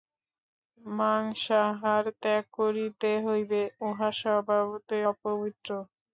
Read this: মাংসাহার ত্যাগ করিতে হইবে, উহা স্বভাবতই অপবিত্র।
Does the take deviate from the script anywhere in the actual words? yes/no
no